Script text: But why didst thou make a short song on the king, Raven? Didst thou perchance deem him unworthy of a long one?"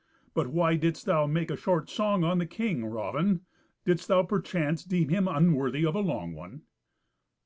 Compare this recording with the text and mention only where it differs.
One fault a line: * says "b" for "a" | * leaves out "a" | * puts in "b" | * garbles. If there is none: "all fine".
all fine